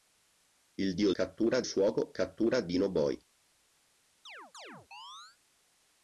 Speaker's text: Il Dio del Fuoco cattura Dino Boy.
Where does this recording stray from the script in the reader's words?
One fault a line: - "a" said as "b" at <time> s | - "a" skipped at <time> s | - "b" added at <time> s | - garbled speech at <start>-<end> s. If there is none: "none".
- "del" said as "cattura" at 1.1 s